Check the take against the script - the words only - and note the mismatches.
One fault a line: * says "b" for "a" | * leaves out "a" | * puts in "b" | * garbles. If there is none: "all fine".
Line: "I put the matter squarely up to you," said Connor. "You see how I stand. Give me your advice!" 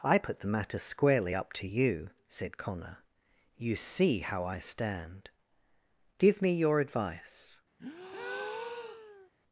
all fine